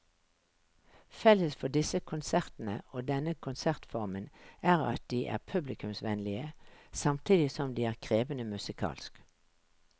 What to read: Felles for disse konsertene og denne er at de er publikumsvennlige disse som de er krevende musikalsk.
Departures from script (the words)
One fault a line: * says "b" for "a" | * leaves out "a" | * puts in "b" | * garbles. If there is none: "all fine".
* puts in "konsertformen"
* says "samtidig" for "disse"